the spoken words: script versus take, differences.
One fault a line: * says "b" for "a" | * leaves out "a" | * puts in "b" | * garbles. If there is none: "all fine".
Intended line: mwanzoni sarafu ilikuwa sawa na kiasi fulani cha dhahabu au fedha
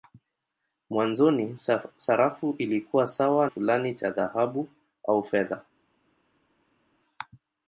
* leaves out "na kiasi"